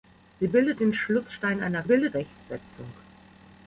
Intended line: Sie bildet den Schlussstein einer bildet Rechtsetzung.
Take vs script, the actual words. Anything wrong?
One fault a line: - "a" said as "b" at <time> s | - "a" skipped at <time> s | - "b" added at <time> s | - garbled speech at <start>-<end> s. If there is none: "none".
none